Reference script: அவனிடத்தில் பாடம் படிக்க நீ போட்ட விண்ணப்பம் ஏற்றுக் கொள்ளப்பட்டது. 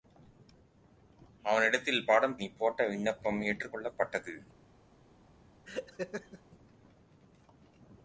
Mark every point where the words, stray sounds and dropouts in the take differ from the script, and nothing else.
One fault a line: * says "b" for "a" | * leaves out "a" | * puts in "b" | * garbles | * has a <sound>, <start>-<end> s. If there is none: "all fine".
* leaves out "படிக்க"
* has a laugh, 5.7-6.4 s